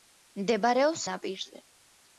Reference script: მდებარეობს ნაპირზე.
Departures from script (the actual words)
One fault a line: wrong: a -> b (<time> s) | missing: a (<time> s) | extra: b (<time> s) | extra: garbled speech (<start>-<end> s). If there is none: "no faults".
no faults